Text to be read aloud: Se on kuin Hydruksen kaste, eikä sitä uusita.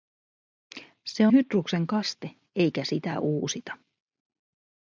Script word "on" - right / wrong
wrong